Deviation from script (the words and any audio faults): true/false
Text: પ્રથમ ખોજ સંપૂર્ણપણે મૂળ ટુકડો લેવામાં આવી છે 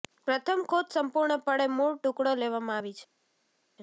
false